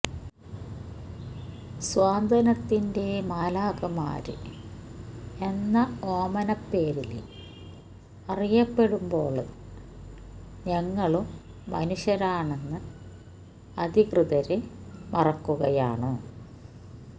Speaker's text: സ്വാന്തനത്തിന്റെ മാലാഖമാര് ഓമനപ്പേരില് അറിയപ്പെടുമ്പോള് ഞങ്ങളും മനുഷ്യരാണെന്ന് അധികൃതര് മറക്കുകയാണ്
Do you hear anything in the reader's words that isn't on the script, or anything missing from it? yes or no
yes